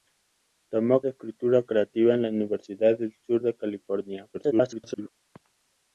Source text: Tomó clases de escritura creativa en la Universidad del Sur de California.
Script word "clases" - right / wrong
wrong